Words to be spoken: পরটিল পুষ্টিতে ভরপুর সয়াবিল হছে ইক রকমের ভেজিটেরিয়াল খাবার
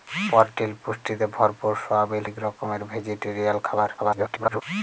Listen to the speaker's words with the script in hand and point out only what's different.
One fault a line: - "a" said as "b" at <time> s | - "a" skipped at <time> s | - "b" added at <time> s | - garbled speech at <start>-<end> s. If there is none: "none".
- "হছে" skipped at 2.2 s
- garbled speech at 4.0-4.6 s